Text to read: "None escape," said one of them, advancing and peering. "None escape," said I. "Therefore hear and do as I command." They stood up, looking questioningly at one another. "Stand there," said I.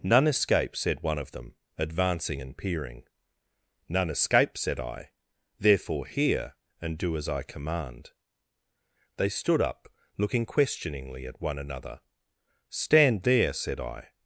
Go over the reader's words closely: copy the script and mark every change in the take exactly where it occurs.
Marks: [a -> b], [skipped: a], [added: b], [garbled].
"None escape," said one of them, advancing and peering. "None escape," said I. "Therefore hear and do as I command." They stood up, looking questioningly at one another. "Stand there," said I.